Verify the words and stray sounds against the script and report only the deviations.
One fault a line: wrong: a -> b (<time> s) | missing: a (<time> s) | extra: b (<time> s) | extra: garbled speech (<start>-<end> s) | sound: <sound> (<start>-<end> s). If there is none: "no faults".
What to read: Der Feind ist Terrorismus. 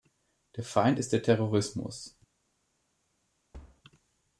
extra: der (1.1 s)
sound: thud (3.5-3.8 s)